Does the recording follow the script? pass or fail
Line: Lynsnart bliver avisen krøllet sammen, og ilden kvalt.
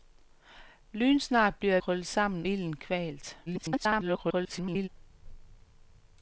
fail